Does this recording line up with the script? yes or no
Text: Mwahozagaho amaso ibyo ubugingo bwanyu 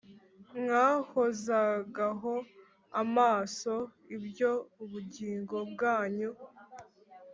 yes